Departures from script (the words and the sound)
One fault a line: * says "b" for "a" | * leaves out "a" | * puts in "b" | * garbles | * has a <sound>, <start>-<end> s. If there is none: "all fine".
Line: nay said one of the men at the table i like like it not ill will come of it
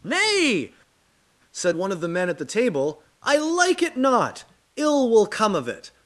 * leaves out "like"